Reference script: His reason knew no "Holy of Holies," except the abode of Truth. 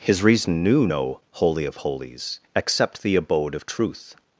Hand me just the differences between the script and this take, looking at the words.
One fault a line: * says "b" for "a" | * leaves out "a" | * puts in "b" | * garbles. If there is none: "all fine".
all fine